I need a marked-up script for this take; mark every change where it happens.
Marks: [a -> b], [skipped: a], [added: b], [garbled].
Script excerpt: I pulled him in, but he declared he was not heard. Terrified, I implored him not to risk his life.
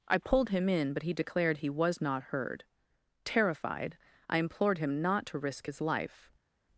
I pulled him in, but he declared he was not heard. Terrified, I implored him not to risk his life.